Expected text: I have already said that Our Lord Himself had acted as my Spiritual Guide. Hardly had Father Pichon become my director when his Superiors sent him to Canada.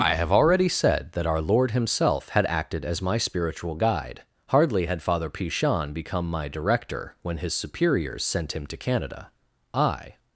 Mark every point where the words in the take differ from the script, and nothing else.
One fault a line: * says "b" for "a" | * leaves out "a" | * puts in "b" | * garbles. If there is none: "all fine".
* puts in "I"